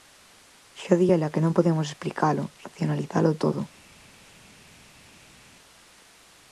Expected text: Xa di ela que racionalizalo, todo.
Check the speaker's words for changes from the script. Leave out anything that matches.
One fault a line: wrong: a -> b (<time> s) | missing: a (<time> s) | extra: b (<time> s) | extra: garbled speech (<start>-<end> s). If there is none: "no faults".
extra: non podemos explicalo (1.4 s)